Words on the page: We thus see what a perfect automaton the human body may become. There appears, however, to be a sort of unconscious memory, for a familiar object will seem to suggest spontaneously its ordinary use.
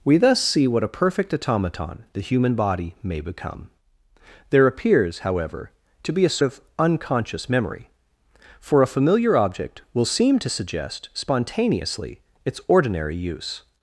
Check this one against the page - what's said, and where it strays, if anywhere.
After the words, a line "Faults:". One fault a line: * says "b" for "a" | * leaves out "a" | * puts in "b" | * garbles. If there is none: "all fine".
We thus see what a perfect automaton the human body may become. There appears, however, to be a of unconscious memory, for a familiar object will seem to suggest spontaneously its ordinary use.
Faults:
* leaves out "sort"